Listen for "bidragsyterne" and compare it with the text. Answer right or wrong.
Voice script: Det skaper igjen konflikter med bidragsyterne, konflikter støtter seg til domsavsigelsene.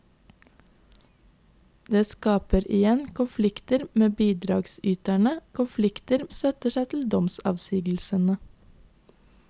right